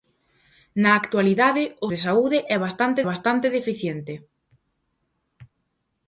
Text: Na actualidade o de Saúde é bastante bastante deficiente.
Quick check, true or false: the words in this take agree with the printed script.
true